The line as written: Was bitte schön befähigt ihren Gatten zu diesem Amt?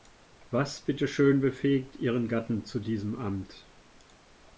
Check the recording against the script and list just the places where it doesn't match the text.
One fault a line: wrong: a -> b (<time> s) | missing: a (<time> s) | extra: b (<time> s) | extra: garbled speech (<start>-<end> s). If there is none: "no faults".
no faults